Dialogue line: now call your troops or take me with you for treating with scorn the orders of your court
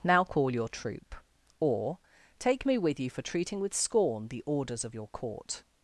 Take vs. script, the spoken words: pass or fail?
fail